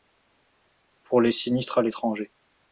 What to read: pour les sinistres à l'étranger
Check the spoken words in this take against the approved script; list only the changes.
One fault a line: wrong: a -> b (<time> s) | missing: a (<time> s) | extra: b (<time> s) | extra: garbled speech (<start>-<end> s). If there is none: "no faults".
no faults